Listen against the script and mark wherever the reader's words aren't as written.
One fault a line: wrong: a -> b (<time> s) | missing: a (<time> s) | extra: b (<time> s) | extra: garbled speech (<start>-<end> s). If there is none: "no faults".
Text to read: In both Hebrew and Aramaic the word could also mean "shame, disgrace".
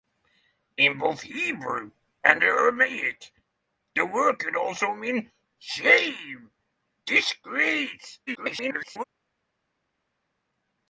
extra: garbled speech (8.3-9.0 s)